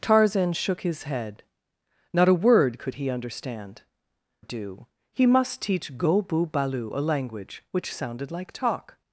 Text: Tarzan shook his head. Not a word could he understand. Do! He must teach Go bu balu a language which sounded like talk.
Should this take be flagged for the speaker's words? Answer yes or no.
no